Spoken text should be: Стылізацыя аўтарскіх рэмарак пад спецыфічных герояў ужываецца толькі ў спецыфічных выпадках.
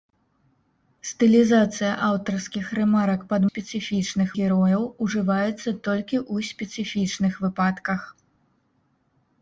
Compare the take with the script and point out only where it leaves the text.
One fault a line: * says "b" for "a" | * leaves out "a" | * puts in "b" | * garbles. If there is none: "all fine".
all fine